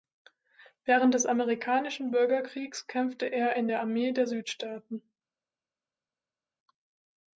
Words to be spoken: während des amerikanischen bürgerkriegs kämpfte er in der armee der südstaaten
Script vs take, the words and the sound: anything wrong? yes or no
no